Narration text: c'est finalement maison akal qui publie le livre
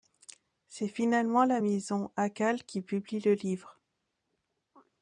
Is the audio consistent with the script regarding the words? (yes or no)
no